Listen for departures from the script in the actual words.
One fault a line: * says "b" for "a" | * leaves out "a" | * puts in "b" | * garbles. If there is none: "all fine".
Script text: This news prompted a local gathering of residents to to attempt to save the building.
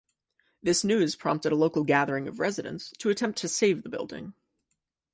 * leaves out "to"